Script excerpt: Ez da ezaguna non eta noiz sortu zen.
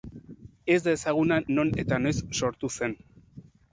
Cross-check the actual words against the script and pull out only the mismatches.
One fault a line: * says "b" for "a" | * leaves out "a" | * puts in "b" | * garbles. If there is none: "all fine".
all fine